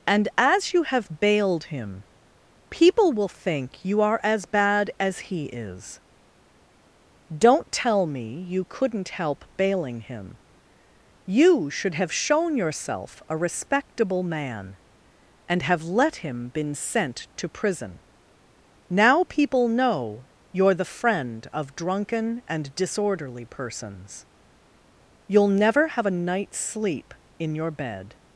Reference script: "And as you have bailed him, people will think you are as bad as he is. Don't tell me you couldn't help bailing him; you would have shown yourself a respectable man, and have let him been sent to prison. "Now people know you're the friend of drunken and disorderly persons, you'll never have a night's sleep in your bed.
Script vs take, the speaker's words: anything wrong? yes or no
yes